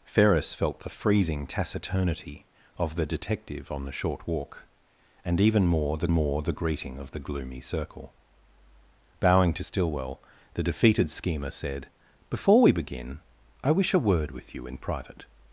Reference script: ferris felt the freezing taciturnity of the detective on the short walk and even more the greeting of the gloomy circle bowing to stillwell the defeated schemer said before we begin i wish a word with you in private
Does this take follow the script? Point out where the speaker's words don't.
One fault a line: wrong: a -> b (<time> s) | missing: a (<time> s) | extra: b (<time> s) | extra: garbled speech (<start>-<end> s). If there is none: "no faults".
extra: more the (6.1 s)